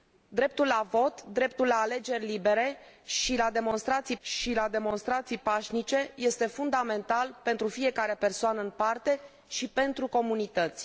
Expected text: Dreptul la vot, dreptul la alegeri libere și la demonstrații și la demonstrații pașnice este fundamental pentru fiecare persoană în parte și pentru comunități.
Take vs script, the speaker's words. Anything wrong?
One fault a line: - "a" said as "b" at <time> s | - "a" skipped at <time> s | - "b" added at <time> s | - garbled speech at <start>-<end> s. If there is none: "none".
none